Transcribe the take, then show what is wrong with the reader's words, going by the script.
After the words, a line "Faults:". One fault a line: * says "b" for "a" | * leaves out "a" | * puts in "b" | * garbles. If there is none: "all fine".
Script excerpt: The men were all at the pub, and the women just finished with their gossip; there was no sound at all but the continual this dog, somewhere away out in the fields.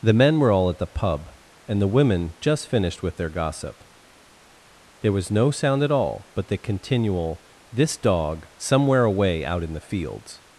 The men were all at the pub, and the women just finished with their gossip; there was no sound at all but the continual this dog, somewhere away out in the fields.
Faults:
all fine